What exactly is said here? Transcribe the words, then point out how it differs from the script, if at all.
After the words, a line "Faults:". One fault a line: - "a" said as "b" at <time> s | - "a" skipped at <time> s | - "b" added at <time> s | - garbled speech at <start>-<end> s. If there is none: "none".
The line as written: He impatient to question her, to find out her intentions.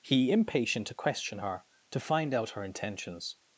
He impatient to question her, to find out her intentions.
Faults:
none